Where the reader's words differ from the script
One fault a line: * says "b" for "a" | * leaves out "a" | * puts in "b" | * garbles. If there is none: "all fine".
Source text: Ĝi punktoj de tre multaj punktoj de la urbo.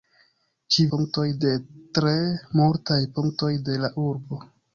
all fine